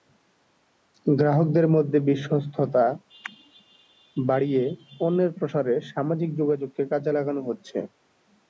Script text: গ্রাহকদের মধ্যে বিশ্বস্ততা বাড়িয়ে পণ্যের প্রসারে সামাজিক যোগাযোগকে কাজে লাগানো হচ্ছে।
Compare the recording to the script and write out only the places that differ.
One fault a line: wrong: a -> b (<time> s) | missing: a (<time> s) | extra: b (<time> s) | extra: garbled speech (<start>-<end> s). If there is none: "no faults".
no faults